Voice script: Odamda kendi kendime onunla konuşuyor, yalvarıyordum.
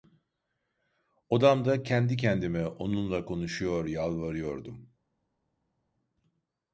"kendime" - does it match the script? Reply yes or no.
yes